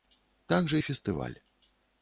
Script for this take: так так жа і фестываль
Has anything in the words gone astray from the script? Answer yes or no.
yes